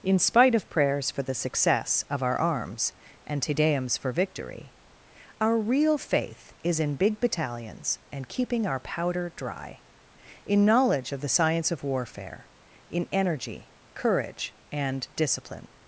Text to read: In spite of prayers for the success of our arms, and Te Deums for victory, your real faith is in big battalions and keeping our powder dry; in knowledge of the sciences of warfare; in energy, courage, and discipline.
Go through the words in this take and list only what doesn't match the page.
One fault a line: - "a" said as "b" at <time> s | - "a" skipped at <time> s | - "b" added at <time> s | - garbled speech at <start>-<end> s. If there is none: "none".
- "your" said as "our" at 5.4 s
- "sciences" said as "science" at 11.3 s